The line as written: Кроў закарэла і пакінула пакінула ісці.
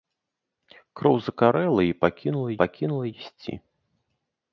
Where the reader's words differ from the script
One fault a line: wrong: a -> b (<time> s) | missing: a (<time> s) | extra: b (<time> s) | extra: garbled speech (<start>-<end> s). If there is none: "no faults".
no faults